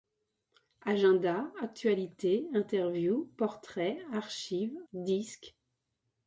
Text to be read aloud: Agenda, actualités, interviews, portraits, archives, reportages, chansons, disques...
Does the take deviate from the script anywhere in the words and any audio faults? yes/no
yes